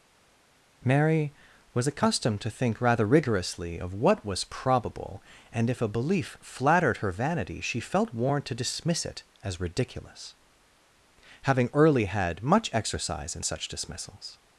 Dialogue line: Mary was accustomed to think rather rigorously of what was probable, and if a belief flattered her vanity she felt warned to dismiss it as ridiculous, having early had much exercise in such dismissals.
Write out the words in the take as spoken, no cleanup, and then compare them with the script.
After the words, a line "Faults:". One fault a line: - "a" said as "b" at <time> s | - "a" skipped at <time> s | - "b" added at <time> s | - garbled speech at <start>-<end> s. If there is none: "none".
Mary was accustomed to think rather rigorously of what was probable, and if a belief flattered her vanity she felt warned to dismiss it as ridiculous, having early had much exercise in such dismissals.
Faults:
none